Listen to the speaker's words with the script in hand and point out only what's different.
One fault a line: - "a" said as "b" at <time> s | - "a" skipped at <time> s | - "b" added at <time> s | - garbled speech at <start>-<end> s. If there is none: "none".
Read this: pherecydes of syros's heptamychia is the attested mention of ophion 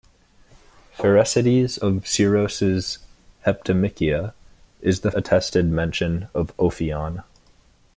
none